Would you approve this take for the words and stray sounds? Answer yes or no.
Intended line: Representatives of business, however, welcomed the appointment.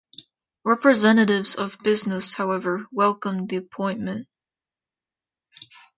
yes